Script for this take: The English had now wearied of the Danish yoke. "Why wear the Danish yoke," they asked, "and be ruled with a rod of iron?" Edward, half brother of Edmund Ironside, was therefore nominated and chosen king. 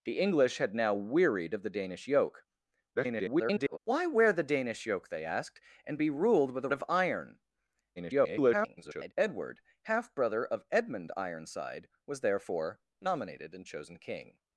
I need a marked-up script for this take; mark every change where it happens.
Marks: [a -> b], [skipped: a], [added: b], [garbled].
The English had now wearied of the Danish yoke. [garbled] "Why wear the Danish yoke," they asked, "and be ruled with a [skipped: rod] of iron?" [garbled] Edward, half brother of Edmund Ironside, was therefore nominated and chosen king.